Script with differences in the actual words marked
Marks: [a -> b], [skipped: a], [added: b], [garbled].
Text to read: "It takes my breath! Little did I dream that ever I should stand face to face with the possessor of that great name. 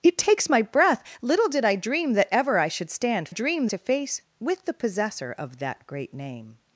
"It takes my breath! Little did I dream that ever I should stand [face -> dream] to face with the possessor of that great name.